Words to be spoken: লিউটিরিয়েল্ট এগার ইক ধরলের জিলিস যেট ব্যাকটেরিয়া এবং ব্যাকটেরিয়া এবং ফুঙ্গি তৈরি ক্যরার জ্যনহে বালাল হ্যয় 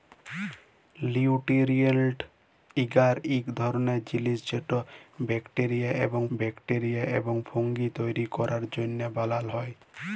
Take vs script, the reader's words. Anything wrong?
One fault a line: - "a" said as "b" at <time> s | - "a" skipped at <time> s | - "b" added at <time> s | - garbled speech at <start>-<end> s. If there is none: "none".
none